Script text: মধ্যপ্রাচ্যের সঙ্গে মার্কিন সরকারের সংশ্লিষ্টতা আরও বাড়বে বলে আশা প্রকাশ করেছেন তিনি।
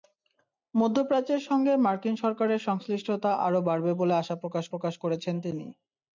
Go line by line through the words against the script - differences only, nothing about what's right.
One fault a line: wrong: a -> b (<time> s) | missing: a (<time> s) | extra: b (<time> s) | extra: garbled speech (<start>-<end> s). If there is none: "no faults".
extra: প্রকাশ (4.7 s)